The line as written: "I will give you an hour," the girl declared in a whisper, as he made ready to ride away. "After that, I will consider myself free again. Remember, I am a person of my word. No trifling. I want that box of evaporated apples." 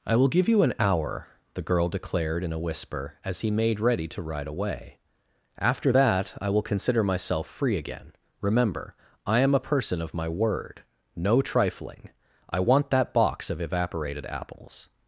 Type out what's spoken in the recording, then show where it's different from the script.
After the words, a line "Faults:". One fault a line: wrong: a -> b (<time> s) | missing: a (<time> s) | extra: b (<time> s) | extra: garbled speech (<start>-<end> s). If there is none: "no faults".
"I will give you an hour," the girl declared in a whisper, as he made ready to ride away. "After that, I will consider myself free again. Remember, I am a person of my word. No trifling. I want that box of evaporated apples."
Faults:
no faults